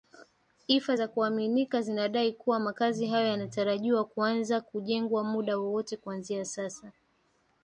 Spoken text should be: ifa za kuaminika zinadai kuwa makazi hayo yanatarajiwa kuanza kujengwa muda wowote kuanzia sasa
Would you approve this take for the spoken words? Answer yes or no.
yes